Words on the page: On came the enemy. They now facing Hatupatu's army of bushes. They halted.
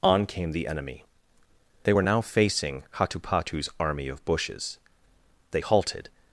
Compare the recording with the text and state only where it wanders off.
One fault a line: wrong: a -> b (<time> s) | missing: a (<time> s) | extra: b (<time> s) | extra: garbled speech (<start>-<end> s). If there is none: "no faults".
extra: were (1.9 s)